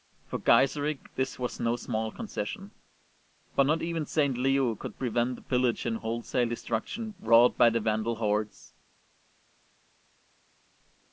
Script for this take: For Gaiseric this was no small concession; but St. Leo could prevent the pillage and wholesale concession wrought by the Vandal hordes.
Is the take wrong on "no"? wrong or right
right